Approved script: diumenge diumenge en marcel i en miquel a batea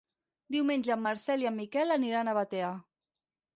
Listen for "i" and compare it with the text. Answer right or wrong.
right